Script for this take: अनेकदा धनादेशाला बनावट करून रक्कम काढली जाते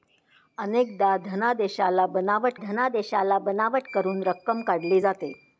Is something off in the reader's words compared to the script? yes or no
yes